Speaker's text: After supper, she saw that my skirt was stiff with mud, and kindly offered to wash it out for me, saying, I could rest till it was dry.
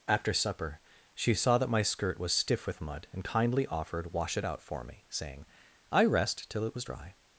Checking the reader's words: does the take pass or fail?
fail